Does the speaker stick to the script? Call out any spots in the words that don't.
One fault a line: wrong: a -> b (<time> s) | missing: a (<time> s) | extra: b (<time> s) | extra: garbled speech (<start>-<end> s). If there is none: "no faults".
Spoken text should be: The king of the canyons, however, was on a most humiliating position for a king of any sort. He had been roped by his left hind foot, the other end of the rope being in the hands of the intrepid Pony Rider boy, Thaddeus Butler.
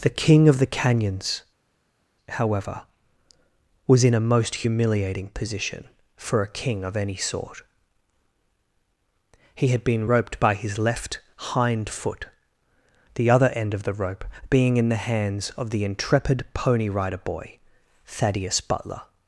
wrong: on -> in (4.0 s)